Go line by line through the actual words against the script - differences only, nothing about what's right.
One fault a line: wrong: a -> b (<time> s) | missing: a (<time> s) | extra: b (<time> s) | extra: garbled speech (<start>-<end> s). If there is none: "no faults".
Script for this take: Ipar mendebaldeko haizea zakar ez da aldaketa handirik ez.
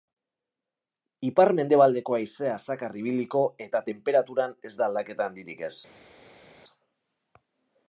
extra: ibiliko eta tenperaturan (3.0 s)